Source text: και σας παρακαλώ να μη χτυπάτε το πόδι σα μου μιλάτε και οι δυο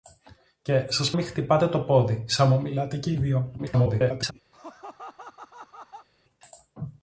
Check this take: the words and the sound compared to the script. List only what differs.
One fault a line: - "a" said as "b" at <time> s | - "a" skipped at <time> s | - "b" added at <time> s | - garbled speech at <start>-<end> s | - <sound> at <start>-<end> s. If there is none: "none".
- "παρακαλώ να" skipped at 1.1 s
- garbled speech at 3.6-4.3 s
- laugh at 4.5-6.1 s